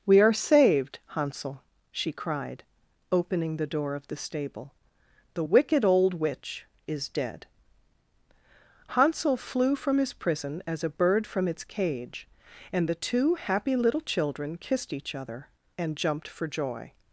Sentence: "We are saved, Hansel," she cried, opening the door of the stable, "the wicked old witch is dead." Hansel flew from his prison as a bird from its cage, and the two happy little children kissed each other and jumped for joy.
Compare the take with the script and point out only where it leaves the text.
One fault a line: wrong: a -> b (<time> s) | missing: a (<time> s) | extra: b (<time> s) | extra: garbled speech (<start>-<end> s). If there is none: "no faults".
no faults